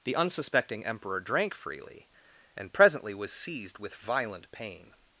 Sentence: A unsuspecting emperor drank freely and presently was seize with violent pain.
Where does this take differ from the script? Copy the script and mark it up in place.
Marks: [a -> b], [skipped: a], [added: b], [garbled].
[A -> The] unsuspecting emperor drank freely and presently was [seize -> seized] with violent pain.